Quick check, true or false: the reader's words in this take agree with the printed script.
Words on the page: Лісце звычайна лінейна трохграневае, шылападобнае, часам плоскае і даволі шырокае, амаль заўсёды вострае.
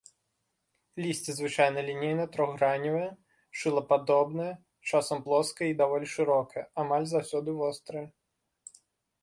true